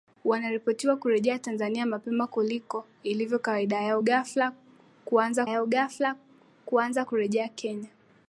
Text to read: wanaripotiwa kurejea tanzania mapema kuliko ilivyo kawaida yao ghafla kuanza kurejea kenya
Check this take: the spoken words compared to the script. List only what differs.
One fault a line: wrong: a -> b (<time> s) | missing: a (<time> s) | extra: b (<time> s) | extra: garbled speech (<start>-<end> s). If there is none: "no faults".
extra: yao ghafla kuanza (5.5 s)